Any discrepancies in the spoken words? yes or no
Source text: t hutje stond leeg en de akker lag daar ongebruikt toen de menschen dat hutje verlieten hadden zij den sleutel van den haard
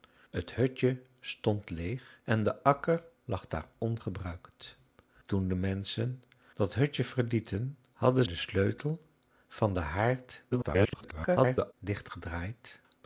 yes